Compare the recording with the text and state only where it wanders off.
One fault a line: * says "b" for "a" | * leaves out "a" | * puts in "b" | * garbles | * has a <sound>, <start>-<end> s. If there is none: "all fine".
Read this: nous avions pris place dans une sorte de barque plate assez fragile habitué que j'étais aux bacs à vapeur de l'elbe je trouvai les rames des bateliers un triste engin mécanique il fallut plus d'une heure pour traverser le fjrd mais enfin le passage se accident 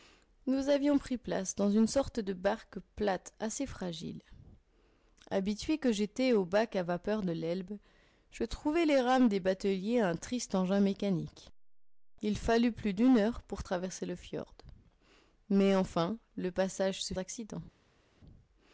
all fine